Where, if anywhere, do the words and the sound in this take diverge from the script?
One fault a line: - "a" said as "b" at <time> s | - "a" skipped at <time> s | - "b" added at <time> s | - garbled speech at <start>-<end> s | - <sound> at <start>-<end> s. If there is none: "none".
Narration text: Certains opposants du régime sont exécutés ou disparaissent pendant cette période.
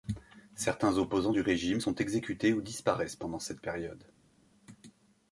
none